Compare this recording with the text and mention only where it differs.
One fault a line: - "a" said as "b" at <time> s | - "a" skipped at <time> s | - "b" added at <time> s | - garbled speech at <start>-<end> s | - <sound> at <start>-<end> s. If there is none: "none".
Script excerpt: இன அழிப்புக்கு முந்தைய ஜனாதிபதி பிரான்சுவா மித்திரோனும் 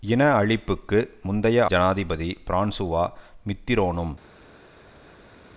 none